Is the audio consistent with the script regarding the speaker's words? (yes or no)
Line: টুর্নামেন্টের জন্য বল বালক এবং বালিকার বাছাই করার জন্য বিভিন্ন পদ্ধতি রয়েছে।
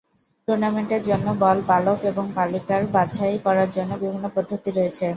yes